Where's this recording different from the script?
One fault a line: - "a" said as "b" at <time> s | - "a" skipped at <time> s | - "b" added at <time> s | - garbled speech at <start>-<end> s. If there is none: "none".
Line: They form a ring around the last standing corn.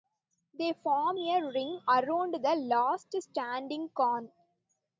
none